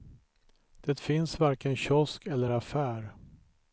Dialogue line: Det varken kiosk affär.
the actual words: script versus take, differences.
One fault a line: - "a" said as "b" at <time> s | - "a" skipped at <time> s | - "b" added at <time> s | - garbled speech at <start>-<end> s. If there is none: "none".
- "finns" added at 1.0 s
- "eller" added at 2.3 s